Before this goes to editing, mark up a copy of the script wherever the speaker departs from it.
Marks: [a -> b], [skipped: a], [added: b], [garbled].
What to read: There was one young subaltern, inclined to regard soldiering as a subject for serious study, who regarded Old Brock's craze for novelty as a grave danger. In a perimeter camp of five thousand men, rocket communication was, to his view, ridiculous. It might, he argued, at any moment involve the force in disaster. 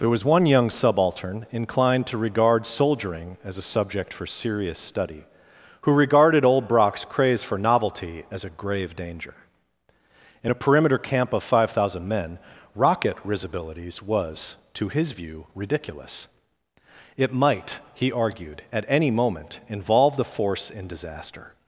There was one young subaltern, inclined to regard soldiering as a subject for serious study, who regarded Old Brock's craze for novelty as a grave danger. In a perimeter camp of five thousand men, rocket [communication -> risibilities] was, to his view, ridiculous. It might, he argued, at any moment involve the force in disaster.